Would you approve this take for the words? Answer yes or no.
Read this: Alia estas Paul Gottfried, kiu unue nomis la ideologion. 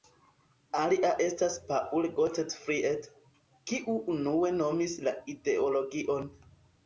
yes